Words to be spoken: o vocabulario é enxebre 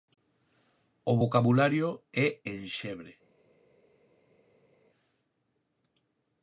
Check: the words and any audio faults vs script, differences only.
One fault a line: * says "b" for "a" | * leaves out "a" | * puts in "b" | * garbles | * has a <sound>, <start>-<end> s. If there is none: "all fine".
all fine